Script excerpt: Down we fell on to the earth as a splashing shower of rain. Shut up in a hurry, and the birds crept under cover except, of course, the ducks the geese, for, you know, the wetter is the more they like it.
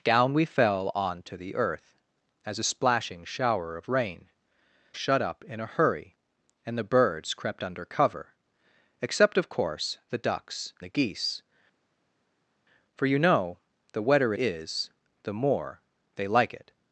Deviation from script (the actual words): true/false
false